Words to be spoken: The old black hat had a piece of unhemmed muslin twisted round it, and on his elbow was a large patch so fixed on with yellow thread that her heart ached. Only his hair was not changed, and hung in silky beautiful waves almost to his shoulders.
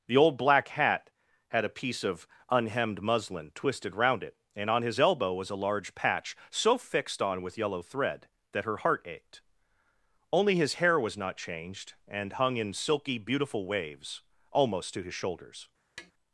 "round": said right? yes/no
yes